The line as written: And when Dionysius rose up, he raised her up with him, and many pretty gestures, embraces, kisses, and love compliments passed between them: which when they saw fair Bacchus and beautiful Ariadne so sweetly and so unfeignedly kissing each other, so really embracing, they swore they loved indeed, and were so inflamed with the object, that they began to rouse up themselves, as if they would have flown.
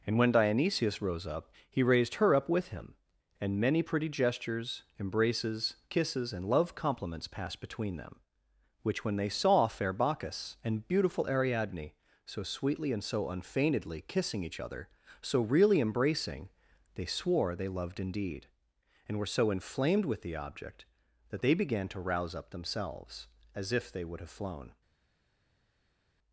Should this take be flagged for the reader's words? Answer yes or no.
no